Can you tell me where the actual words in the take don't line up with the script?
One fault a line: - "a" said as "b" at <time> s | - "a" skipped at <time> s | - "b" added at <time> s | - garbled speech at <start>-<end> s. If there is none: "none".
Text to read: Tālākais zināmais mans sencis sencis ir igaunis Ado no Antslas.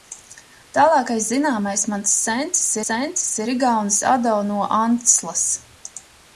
none